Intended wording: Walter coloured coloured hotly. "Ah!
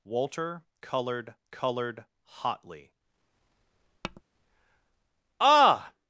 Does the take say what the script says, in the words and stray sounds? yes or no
no